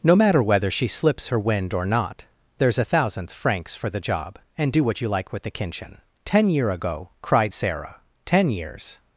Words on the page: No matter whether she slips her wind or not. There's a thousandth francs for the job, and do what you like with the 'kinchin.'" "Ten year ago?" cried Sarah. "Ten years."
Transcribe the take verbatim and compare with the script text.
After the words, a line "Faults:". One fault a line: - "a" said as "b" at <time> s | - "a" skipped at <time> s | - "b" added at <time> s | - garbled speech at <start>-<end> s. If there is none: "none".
No matter whether she slips her wind or not. There's a thousandth francs for the job, and do what you like with the 'kinchin.'" "Ten year ago?" cried Sarah. "Ten years."
Faults:
none